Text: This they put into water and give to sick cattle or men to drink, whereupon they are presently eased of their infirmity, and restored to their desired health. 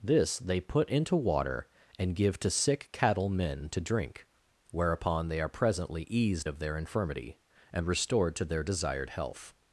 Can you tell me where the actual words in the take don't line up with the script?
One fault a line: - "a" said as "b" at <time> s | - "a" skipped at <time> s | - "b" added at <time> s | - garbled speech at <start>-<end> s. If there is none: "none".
- "or" skipped at 3.3 s